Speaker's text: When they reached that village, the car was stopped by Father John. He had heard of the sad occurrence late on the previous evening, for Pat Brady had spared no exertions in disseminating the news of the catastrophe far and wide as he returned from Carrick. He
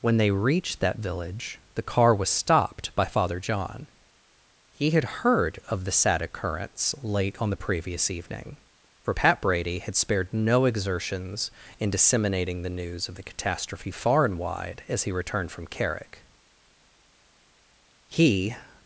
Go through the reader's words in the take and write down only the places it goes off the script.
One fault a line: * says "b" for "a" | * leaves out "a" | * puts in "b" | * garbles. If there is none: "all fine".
all fine